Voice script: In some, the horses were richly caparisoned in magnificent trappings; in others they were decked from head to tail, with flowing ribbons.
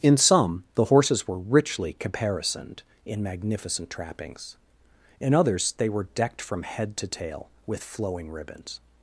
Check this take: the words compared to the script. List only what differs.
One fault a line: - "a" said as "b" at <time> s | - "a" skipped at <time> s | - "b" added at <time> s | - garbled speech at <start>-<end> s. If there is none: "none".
none